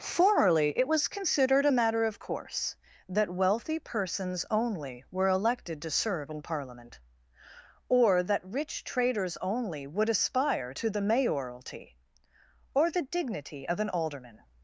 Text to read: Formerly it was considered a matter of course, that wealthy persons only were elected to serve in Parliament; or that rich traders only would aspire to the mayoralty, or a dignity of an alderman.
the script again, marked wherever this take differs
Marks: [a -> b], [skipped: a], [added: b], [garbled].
Formerly it was considered a matter of course, that wealthy persons only were elected to serve in Parliament; or that rich traders only would aspire to the mayoralty, or [a -> the] dignity of an alderman.